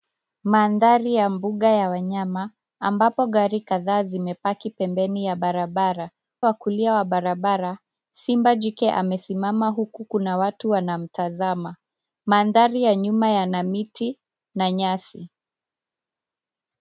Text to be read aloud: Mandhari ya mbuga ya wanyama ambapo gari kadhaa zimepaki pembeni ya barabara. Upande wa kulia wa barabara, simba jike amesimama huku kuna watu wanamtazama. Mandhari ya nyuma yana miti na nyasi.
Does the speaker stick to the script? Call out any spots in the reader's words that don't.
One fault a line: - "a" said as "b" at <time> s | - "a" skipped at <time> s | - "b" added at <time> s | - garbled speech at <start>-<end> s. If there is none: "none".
- "Upande" skipped at 6.1 s